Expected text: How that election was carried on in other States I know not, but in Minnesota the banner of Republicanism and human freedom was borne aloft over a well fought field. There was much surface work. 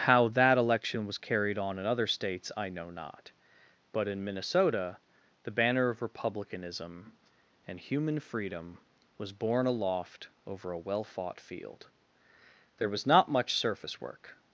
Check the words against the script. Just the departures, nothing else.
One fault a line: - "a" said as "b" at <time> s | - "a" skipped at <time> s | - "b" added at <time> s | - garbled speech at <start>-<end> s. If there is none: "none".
- "not" added at 13.1 s